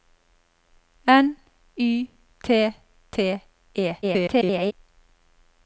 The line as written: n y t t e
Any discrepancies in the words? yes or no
yes